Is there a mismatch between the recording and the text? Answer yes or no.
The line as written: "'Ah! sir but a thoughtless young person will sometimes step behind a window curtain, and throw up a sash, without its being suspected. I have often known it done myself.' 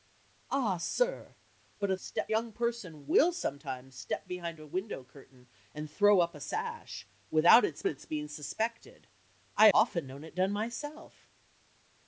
yes